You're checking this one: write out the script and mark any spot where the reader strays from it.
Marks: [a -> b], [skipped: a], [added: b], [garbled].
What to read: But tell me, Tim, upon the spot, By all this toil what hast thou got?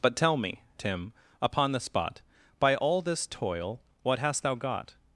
But tell me, Tim, upon the spot, By all this toil what hast thou got?